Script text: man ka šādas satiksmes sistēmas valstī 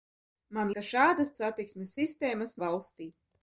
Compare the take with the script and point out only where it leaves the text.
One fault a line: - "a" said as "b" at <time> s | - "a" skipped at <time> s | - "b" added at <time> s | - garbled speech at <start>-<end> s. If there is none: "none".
none